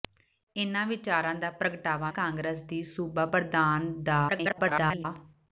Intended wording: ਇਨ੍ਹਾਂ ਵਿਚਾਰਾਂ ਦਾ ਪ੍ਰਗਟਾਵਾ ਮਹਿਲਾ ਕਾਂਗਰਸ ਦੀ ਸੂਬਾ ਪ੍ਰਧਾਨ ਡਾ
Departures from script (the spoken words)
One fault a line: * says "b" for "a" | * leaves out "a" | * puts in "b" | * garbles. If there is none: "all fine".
* leaves out "ਮਹਿਲਾ"
* garbles